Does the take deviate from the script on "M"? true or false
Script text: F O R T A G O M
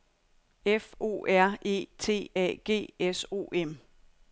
false